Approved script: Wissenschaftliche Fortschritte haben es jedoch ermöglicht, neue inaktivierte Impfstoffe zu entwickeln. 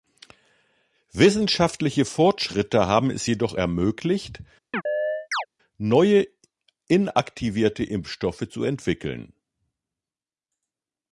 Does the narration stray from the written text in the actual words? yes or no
no